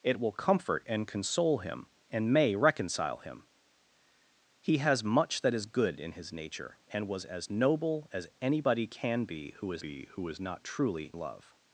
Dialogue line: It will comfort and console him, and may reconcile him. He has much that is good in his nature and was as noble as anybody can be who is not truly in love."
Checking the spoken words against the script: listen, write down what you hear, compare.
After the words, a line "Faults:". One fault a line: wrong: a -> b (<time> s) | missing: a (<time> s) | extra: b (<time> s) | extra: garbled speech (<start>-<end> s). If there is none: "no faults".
It will comfort and console him, and may reconcile him. He has much that is good in his nature and was as noble as anybody can be who is be who is not truly love."
Faults:
extra: be who is (9.8 s)
missing: in (11.1 s)